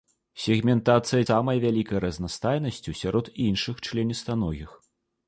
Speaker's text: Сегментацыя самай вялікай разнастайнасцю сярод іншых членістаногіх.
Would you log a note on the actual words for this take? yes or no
no